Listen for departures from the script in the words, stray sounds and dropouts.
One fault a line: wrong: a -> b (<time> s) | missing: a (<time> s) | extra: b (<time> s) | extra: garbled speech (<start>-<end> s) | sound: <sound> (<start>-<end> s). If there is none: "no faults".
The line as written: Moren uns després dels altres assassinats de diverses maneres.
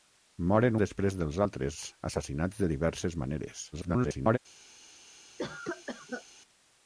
missing: uns (0.8 s)
extra: garbled speech (3.7-4.4 s)
sound: cough (5.4-6.2 s)